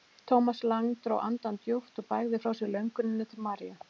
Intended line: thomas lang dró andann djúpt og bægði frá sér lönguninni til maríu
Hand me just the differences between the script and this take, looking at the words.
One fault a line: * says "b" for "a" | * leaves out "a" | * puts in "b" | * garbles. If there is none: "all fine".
all fine